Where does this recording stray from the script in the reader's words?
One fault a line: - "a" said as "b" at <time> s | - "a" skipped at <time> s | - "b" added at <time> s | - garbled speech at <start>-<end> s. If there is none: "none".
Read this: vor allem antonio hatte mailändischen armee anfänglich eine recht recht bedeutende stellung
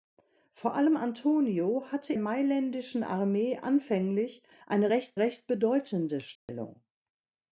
none